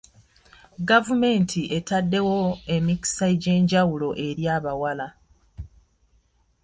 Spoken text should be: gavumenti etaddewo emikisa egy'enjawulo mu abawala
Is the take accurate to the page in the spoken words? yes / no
no